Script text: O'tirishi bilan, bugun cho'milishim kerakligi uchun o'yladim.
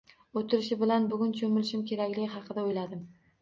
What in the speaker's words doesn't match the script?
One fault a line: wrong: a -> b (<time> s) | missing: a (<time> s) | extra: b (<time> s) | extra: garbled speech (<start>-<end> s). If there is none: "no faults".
wrong: uchun -> haqida (2.4 s)